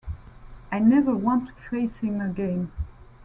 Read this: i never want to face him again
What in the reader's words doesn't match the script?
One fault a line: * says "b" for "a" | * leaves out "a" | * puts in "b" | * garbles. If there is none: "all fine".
all fine